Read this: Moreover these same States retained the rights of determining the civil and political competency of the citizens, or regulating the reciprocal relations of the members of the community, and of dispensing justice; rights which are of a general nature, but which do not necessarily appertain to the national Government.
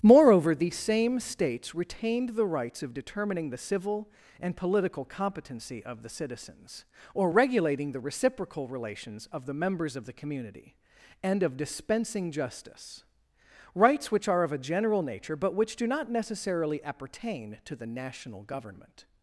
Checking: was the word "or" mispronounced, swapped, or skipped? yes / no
no